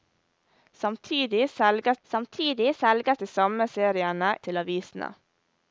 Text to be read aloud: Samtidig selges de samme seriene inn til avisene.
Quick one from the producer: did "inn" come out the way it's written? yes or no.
no